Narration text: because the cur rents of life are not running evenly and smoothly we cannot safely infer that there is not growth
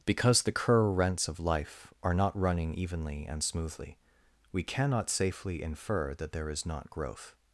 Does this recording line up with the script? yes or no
yes